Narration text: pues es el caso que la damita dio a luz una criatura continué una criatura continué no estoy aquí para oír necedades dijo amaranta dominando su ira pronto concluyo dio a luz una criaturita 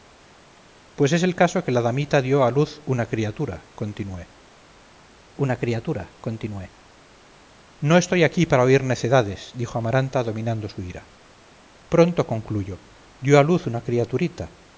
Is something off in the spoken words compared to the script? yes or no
no